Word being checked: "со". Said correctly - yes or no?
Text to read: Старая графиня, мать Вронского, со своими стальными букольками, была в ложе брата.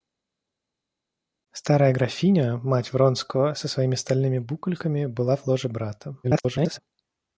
yes